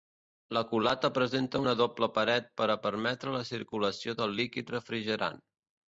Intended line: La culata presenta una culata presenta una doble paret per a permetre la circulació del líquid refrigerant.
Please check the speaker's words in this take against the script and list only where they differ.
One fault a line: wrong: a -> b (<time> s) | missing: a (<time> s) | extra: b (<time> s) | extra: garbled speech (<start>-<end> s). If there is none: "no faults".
missing: culata presenta una (1.7 s)